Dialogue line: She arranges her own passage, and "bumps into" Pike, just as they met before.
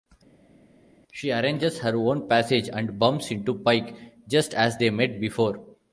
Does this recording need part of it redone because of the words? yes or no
no